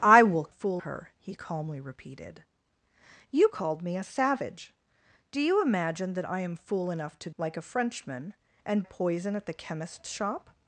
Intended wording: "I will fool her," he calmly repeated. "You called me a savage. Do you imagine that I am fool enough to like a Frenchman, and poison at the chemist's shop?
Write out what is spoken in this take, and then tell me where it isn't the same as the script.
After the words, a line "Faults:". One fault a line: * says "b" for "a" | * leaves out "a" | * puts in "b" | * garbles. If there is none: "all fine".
"I will fool her," he calmly repeated. "You called me a savage. Do you imagine that I am fool enough to like a Frenchman, and poison at the chemist's shop?
Faults:
all fine